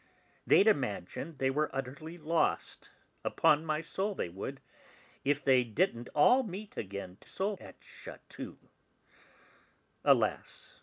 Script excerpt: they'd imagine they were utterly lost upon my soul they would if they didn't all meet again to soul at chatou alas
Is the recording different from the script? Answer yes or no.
no